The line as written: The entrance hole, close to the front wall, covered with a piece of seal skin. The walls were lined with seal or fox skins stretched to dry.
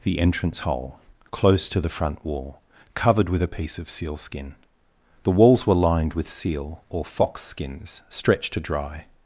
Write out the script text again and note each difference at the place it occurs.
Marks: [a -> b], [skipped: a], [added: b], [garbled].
The entrance hole, close to the front wall, covered with a piece of seal skin. The walls were lined with seal or fox skins stretched to dry.